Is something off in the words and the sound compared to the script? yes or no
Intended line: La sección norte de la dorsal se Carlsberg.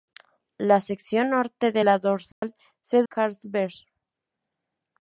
yes